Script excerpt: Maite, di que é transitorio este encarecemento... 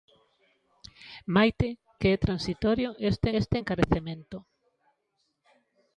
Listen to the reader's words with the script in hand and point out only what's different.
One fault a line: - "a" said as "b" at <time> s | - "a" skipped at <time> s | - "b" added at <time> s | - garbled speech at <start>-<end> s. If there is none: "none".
- "di" skipped at 1.7 s
- "este" added at 3.4 s